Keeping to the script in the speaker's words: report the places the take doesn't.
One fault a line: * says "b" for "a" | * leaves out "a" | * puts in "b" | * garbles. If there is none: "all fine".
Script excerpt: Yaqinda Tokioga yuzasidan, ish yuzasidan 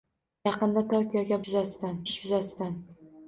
all fine